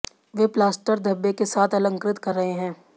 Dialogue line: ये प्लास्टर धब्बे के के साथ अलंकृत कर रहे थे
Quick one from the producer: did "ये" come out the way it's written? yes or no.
no